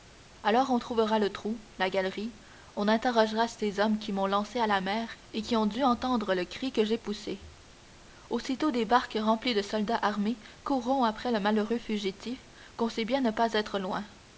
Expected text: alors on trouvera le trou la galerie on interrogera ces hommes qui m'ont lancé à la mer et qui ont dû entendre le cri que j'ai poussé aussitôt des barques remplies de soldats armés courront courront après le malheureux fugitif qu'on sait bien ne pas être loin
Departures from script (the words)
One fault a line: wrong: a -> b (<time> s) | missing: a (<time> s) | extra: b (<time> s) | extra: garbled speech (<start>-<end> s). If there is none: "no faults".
missing: courront (11.0 s)